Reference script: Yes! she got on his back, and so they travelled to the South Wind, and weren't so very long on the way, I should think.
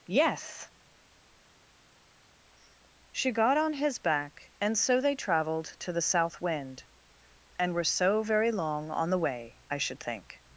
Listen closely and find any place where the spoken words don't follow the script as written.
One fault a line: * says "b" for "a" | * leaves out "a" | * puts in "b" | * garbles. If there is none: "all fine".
* says "were" for "weren't"